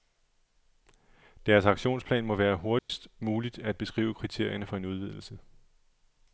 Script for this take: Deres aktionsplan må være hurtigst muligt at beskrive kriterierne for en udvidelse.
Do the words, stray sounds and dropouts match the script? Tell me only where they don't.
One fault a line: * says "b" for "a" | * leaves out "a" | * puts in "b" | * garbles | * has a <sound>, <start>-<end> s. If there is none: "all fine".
* has a dropout, 2.8-2.9 s